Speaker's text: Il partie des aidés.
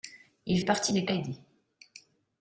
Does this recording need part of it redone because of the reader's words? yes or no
no